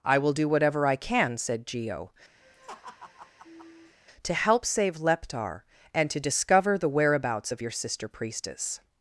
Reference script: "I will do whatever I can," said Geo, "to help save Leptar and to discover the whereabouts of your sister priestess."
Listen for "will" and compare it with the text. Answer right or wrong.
right